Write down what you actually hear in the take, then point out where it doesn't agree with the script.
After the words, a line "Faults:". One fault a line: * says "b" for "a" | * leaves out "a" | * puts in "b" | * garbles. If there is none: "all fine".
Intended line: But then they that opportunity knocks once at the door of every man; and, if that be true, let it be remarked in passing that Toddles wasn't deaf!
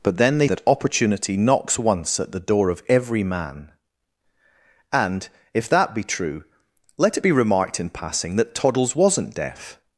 But then they that opportunity knocks once at the door of every man; and, if that be true, let it be remarked in passing that Toddles wasn't deaf!
Faults:
all fine